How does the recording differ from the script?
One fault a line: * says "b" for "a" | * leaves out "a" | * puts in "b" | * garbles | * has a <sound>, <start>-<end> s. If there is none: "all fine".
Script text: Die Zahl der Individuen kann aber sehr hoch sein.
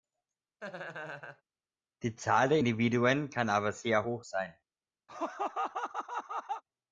* has a laugh, 0.6-1.4 s
* has a laugh, 5.1-6.6 s